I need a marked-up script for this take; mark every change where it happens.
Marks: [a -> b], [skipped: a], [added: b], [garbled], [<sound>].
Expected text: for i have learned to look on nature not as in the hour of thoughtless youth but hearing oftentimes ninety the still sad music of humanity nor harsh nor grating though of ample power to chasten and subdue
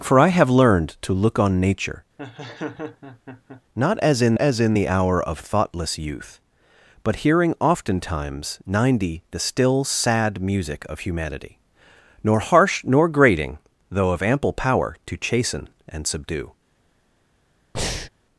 for i have learned to look on nature [laugh] not as in [added: as in] the hour of thoughtless youth but hearing oftentimes ninety the still sad music of humanity nor harsh nor grating though of ample power to chasten and subdue [breath]